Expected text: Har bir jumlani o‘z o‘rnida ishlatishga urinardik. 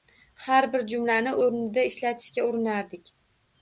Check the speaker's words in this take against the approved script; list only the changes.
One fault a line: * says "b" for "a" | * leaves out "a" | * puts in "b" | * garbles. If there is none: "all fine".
* leaves out "o‘z"